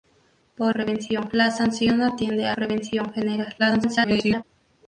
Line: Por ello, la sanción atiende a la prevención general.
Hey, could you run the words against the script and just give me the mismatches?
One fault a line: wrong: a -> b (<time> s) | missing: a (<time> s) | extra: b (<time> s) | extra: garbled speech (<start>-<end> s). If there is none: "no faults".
wrong: ello -> prevención (0.7 s)
missing: la (2.5 s)
extra: garbled speech (3.6-4.4 s)